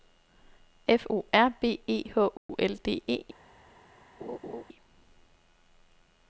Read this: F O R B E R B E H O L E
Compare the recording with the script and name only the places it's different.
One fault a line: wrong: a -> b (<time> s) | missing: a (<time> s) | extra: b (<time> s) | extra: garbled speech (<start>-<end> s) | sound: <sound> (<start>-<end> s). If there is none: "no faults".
missing: R B E (2.0 s)
sound: dropout (2.4-2.5 s)
extra: D (2.8 s)
sound: laugh (4.2-4.6 s)